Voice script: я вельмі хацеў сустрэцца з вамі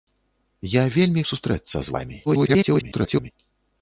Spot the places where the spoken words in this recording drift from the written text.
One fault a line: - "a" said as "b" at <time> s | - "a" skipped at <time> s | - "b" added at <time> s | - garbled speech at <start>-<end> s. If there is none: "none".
- "хацеў" skipped at 1.2 s
- garbled speech at 2.3-3.3 s